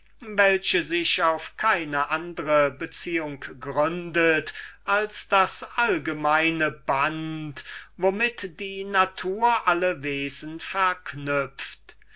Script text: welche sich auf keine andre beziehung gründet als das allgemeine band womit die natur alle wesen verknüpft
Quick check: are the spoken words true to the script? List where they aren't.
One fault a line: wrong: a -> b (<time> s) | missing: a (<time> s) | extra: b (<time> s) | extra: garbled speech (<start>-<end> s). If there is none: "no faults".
no faults